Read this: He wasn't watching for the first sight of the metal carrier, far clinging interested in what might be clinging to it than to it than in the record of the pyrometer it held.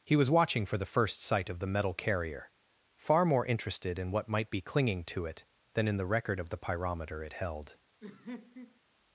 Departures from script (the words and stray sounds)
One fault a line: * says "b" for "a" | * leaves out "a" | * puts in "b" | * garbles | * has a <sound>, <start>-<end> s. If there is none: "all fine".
* says "was" for "wasn't"
* says "more" for "clinging"
* leaves out "to it than"
* has a laugh, 8.0-8.8 s